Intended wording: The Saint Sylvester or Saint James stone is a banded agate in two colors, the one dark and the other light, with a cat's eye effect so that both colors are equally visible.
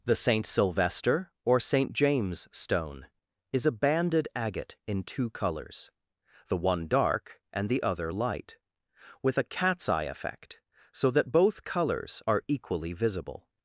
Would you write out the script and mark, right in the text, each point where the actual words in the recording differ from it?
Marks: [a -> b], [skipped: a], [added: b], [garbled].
The Saint Sylvester or Saint James stone is a banded agate in two colors, the one dark and the other light, with a cat's eye effect so that both colors are equally visible.